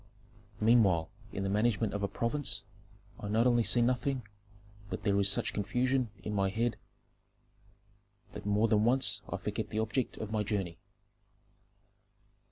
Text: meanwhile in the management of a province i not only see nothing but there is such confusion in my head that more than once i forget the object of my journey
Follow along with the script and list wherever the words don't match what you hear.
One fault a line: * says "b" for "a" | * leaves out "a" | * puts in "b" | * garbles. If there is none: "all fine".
all fine